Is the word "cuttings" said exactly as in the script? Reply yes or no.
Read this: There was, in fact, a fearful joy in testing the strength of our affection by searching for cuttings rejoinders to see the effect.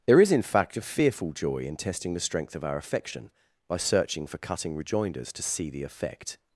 no